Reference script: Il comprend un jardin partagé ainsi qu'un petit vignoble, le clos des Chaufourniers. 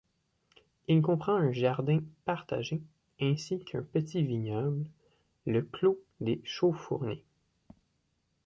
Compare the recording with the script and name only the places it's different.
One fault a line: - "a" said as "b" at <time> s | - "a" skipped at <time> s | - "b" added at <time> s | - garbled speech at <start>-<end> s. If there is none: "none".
none